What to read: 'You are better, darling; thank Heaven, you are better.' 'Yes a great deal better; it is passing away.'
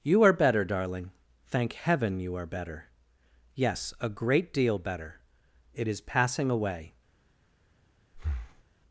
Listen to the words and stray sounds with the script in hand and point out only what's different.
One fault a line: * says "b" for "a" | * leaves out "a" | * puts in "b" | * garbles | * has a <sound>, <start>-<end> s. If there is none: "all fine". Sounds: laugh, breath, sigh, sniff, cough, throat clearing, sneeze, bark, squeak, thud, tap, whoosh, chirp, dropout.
* has a breath, 8.1-8.6 s